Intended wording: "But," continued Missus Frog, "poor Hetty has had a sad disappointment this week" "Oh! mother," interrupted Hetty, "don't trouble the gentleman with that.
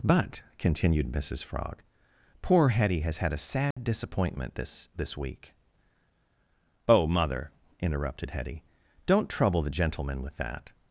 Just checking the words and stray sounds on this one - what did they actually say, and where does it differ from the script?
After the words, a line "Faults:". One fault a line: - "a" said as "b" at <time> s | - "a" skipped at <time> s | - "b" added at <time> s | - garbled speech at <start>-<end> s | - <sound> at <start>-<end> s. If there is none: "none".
"But," continued Missus Frog, "poor Hetty has had a sad disappointment this this week" "Oh! mother," interrupted Hetty, "don't trouble the gentleman with that.
Faults:
- dropout at 3.7-3.8 s
- "this" added at 4.9 s